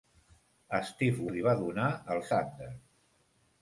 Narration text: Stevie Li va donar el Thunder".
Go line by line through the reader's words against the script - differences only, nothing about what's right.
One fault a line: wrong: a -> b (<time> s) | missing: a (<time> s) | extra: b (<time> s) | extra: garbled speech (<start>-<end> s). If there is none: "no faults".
no faults